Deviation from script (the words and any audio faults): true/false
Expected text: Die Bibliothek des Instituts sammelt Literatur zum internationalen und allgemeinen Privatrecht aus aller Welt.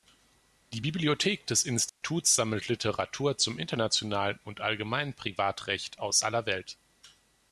true